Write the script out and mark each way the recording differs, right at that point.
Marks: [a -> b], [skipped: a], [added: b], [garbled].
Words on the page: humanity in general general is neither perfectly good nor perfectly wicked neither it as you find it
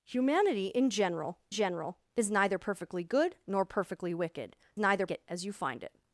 humanity in general general is neither perfectly good nor perfectly wicked neither it as you find it